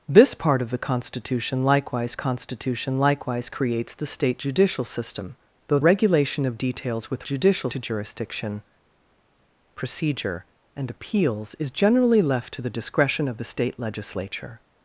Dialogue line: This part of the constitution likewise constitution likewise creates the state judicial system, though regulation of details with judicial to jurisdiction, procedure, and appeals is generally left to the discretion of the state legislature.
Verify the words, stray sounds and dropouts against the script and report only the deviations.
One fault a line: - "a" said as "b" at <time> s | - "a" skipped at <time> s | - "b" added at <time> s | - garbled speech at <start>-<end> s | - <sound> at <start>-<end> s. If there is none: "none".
none